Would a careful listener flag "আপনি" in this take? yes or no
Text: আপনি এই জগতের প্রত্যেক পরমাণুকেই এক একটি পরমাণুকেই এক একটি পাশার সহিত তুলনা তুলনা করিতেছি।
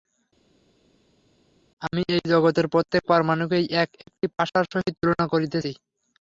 yes